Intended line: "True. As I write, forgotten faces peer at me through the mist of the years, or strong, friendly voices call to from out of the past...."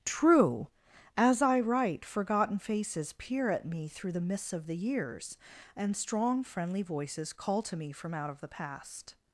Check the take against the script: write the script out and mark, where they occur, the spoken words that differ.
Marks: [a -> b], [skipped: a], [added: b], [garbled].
"True. As I write, forgotten faces peer at me through the [mist -> mists] of the years, [or -> and] strong, friendly voices call to [added: me] from out of the past...."